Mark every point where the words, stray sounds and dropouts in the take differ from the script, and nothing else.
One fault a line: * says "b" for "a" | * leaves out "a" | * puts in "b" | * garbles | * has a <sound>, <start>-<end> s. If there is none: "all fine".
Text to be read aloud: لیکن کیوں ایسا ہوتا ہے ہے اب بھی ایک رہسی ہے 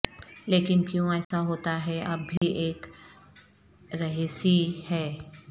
* has a dropout, 1.2-1.3 s
* leaves out "ہے"
* has a dropout, 2.4-2.4 s